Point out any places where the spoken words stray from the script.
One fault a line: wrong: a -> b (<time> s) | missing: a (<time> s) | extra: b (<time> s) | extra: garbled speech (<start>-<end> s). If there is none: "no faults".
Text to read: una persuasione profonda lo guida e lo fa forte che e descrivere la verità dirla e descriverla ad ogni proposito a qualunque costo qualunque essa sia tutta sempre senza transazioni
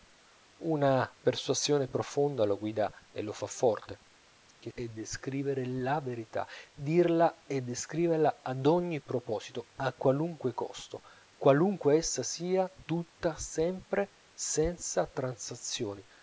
no faults